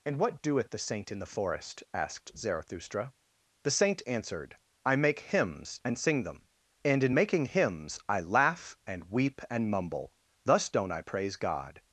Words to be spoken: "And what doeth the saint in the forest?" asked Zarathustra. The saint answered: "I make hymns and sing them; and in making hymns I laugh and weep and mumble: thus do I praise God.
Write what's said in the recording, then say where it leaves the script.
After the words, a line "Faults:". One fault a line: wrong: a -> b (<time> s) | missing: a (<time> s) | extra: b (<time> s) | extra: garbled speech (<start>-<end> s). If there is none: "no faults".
"And what doeth the saint in the forest?" asked Zarathustra. The saint answered: "I make hymns and sing them; and in making hymns I laugh and weep and mumble: thus don't I praise God.
Faults:
wrong: do -> don't (10.7 s)